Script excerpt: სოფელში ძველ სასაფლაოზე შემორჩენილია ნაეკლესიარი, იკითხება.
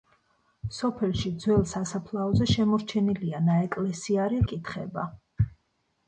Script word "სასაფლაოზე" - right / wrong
right